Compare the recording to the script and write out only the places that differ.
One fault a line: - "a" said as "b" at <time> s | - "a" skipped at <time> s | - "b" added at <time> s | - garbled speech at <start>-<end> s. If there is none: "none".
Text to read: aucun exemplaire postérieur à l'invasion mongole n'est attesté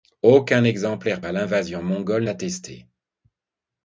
- "postérieur" skipped at 1.2 s
- "n'est" skipped at 2.3 s